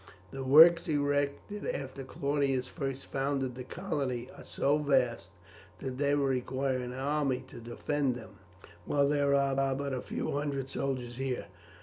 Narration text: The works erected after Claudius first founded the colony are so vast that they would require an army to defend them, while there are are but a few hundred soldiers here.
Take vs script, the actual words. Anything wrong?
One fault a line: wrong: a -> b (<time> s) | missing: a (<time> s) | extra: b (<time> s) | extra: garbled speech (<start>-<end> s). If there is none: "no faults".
no faults